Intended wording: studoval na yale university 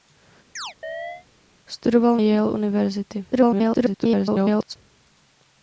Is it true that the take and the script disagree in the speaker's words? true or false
true